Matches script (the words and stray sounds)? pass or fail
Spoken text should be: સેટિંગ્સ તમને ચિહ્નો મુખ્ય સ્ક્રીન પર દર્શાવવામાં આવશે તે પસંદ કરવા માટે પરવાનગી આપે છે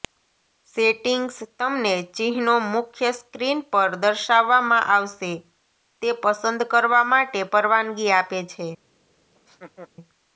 fail